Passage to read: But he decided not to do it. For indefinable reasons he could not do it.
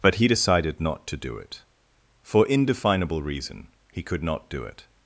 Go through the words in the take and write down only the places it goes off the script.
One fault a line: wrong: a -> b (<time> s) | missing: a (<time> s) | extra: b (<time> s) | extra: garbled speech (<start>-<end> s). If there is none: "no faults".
wrong: reasons -> reason (3.2 s)